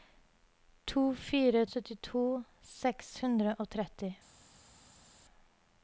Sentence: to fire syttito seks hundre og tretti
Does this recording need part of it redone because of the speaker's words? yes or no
no